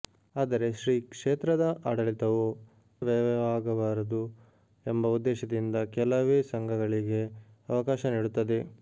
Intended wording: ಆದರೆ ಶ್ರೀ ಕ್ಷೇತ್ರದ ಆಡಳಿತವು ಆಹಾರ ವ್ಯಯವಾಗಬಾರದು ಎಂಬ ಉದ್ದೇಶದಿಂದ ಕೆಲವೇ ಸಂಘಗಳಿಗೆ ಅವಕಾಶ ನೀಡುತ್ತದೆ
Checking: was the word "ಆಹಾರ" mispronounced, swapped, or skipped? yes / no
yes